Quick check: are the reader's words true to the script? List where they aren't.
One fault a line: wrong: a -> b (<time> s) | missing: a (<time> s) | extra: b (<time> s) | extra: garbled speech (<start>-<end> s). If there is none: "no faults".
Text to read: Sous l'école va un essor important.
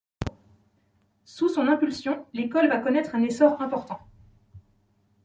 extra: son impulsion (1.5 s)
extra: connaître (2.8 s)